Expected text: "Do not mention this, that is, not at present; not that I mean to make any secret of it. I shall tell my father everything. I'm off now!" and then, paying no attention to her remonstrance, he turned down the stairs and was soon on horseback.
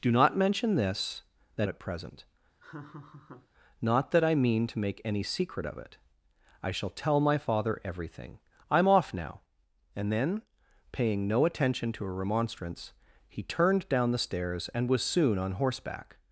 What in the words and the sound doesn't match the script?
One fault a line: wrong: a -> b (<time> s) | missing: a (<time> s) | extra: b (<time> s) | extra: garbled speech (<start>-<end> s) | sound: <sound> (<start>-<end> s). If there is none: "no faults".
missing: is not (1.7 s)
sound: laugh (2.6-3.5 s)